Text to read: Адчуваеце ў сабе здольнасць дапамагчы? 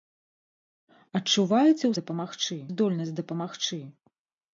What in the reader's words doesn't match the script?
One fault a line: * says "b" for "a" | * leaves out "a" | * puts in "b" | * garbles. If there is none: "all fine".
* says "дапамагчы" for "сабе"